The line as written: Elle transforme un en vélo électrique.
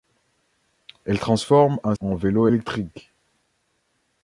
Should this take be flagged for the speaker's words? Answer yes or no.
no